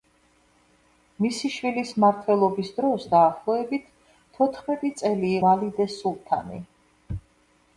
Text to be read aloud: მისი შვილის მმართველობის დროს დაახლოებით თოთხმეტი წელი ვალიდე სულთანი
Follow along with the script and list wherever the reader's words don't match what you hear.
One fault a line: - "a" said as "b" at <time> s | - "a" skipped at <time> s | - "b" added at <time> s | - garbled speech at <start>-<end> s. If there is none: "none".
none